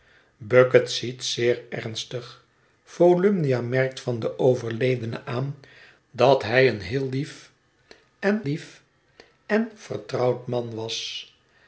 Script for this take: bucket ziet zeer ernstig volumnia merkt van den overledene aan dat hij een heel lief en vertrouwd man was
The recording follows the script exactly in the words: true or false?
false